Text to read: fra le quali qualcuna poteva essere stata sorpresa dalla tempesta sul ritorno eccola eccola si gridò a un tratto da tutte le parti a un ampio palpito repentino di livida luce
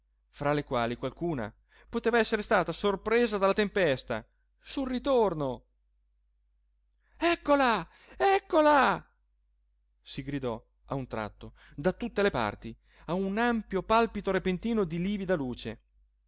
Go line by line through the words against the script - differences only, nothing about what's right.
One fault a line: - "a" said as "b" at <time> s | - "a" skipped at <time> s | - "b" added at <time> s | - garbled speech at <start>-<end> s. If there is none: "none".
none